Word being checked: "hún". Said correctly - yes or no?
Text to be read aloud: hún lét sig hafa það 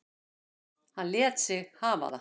no